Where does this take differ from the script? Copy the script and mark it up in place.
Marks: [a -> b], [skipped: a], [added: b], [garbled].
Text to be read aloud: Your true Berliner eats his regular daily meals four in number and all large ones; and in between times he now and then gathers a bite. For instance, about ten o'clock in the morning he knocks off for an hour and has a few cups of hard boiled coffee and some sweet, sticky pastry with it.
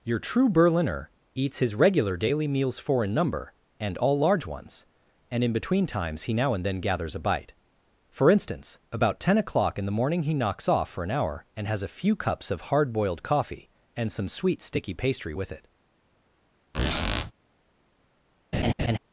Your true Berliner eats his regular daily meals four in number and all large ones; and in between times he now and then gathers a bite. For instance, about ten o'clock in the morning he knocks off for an hour and has a few cups of hard boiled coffee and some sweet, sticky pastry with it.